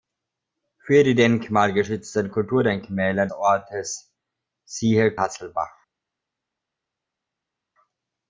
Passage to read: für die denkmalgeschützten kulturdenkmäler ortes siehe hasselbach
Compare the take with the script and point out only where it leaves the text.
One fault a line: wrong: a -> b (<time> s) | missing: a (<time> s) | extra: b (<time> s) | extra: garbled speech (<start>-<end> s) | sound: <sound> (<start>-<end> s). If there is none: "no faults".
no faults